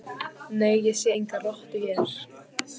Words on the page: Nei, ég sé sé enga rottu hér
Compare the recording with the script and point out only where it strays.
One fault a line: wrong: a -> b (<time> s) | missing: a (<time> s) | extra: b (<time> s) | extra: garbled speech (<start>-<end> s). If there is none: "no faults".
missing: sé (1.1 s)